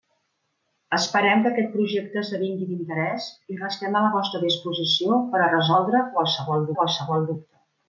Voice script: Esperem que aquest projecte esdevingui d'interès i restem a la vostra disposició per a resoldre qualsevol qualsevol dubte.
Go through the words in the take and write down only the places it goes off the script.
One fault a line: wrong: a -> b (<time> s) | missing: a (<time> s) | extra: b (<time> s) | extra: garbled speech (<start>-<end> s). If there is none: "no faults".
no faults